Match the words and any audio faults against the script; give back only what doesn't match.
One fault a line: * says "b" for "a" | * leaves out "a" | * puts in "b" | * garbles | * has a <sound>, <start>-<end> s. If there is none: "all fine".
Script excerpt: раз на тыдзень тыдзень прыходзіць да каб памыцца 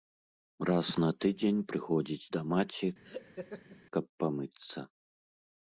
* leaves out "тыдзень"
* puts in "маці"
* has a laugh, 3.0-3.8 s